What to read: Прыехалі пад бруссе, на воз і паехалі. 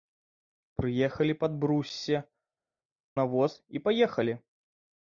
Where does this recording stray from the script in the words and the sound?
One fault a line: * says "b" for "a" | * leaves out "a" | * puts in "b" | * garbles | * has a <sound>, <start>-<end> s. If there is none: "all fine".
all fine